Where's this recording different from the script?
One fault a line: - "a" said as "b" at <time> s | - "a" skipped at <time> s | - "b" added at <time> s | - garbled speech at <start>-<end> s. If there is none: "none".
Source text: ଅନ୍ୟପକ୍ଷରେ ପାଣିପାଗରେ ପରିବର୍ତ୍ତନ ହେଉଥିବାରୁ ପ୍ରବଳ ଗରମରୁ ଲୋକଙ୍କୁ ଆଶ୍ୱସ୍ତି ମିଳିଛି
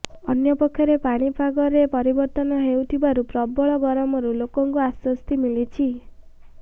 none